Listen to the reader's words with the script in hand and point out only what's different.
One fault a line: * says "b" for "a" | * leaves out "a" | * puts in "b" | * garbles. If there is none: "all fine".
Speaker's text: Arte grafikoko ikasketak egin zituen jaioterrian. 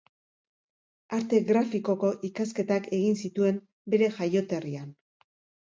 * puts in "bere"